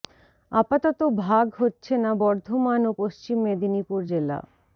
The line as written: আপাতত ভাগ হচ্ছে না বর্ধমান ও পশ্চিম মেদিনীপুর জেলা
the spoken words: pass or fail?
pass